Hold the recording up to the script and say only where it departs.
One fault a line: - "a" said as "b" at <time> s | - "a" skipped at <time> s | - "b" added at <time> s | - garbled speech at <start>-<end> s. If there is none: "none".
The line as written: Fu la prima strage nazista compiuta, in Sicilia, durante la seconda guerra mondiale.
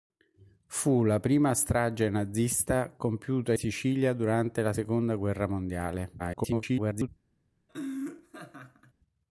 - "in" skipped at 3.5 s
- garbled speech at 6.2-7.1 s